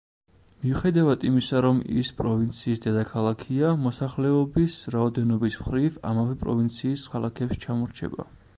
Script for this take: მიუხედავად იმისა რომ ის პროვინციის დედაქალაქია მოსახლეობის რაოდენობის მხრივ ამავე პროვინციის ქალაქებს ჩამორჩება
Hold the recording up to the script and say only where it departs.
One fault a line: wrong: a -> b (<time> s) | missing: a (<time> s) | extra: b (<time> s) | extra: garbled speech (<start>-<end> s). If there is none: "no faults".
no faults